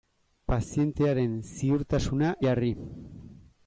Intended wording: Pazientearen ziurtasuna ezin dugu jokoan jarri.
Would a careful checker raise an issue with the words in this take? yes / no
yes